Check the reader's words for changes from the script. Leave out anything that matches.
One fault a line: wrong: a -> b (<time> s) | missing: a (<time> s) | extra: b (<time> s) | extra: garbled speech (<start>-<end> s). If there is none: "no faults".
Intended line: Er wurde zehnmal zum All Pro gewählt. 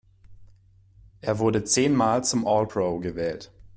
no faults